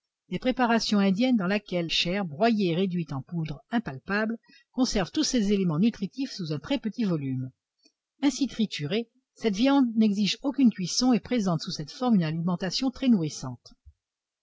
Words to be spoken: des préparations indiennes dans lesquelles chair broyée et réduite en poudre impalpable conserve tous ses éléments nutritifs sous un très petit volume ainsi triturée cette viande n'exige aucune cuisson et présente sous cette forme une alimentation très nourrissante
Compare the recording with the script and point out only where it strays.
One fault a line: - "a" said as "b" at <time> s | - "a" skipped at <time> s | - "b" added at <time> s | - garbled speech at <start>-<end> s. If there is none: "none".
none